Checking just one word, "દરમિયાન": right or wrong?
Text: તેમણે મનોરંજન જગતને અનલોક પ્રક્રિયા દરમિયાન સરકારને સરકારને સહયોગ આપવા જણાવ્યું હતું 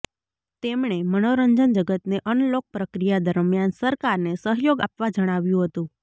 right